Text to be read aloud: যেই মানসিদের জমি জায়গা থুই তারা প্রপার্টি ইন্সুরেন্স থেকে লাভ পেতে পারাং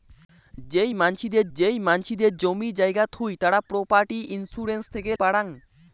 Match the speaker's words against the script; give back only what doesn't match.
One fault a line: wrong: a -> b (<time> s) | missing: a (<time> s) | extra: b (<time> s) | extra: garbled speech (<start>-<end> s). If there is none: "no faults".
extra: যেই মানসিদের (1.6 s)
missing: লাভ পেতে (5.1 s)